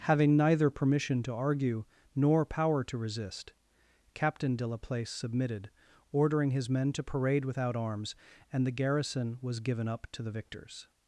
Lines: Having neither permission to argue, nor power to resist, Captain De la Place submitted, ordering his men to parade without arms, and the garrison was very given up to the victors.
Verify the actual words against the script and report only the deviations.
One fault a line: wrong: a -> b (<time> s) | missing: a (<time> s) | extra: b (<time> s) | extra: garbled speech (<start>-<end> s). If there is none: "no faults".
missing: very (9.6 s)